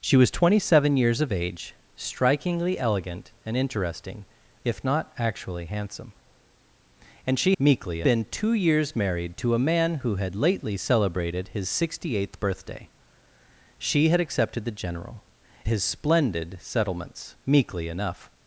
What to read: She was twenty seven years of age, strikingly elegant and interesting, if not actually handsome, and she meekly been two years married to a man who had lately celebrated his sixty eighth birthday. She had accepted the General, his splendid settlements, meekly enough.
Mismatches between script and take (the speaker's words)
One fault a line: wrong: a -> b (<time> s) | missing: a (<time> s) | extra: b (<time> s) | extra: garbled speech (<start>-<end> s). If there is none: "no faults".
no faults